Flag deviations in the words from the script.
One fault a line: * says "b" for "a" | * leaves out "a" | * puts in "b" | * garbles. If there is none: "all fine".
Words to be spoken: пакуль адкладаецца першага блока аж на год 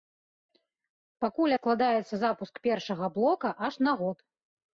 * puts in "запуск"